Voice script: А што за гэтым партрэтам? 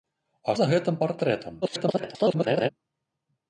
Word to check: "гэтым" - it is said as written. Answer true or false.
true